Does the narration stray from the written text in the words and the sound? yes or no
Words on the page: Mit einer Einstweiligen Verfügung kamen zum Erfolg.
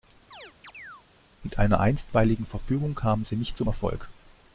yes